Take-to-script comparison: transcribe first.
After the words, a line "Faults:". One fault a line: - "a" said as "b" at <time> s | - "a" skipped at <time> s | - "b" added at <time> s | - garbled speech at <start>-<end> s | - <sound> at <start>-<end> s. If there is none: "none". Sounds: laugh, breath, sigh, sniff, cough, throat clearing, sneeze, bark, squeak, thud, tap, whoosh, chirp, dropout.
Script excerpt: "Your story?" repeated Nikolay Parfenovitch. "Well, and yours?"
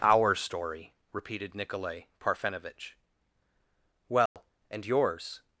"Our story?" repeated Nikolay Parfenovitch. "Well, and yours?"
Faults:
- "Your" said as "Our" at 0.0 s
- dropout at 4.3-4.4 s